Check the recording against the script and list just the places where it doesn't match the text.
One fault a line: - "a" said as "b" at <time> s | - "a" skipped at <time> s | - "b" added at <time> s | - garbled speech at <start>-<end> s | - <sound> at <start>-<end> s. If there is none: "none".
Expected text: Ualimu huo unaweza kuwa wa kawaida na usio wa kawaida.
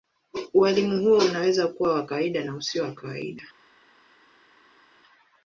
none